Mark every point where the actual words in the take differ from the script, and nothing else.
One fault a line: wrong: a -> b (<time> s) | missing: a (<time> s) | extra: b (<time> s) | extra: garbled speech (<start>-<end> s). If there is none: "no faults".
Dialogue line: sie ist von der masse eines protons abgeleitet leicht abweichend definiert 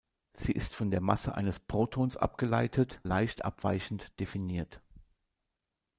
no faults